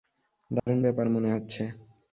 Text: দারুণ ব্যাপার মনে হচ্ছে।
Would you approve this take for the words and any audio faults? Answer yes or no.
no